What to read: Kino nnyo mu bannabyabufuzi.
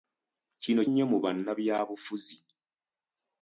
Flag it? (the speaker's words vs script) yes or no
no